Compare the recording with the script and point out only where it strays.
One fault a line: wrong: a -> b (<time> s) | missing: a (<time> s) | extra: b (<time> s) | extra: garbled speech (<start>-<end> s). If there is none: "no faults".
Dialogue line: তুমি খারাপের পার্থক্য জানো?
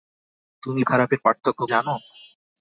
no faults